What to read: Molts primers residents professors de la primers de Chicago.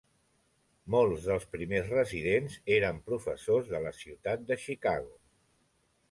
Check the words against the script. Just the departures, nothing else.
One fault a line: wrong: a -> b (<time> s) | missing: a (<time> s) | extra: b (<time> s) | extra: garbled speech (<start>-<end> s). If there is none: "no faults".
extra: dels (1.3 s)
extra: eren (2.8 s)
wrong: primers -> ciutat (4.0 s)